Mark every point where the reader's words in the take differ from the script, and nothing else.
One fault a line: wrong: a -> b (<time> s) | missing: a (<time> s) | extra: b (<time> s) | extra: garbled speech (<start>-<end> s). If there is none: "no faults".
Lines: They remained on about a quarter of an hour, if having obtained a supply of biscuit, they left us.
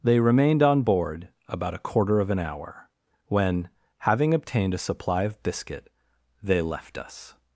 extra: board (0.8 s)
wrong: if -> when (3.3 s)